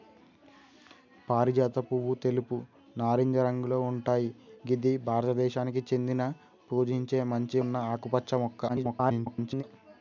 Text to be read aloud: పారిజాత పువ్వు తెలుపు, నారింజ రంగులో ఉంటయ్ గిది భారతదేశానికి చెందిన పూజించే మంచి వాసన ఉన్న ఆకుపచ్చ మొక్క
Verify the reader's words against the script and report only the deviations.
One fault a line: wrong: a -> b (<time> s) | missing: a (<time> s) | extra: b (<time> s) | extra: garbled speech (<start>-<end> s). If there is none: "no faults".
missing: వాసన (7.6 s)
extra: garbled speech (8.7-9.6 s)